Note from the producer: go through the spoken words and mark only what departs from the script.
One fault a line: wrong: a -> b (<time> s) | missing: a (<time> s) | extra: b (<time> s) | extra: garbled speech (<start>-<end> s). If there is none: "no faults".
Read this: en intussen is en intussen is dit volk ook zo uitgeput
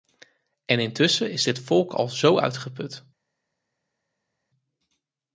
missing: en intussen is (1.4 s)
wrong: ook -> al (1.9 s)